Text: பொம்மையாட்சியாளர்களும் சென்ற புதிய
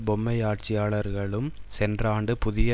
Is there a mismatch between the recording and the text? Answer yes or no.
yes